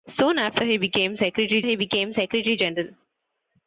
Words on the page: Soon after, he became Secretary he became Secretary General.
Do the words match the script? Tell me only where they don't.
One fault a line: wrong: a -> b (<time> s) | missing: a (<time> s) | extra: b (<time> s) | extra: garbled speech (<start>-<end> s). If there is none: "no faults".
no faults